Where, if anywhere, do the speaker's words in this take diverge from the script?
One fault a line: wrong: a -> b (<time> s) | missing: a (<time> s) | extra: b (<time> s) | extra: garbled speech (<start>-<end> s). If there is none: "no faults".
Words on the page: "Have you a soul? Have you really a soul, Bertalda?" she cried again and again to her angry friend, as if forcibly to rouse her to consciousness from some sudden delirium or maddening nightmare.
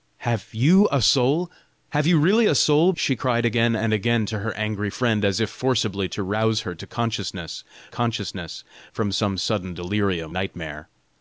missing: Bertalda (2.9 s)
extra: consciousness (7.9 s)
missing: or maddening (10.3 s)